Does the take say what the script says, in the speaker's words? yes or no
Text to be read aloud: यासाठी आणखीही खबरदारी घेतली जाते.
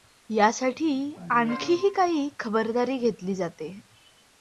no